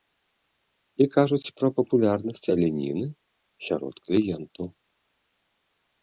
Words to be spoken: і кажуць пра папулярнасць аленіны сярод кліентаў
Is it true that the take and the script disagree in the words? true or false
false